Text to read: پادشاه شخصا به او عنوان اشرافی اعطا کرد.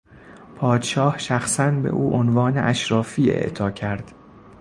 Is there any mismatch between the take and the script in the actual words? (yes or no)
no